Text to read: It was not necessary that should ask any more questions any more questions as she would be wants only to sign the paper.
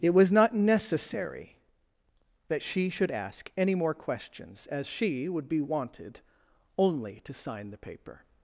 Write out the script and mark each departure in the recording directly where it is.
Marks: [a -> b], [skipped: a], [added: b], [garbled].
It was not necessary that [added: she] should ask any more questions [skipped: any more questions] as she would be [wants -> wanted] only to sign the paper.